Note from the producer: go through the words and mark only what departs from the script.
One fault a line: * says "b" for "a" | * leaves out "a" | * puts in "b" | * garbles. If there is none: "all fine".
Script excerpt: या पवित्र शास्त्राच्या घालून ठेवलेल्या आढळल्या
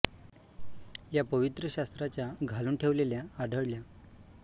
all fine